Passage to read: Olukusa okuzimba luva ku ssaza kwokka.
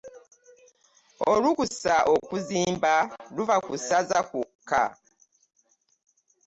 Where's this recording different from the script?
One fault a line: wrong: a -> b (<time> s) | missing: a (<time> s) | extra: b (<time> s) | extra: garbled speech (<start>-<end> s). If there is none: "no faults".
no faults